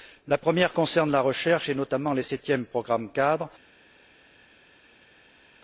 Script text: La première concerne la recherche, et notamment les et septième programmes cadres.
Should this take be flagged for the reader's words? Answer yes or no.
no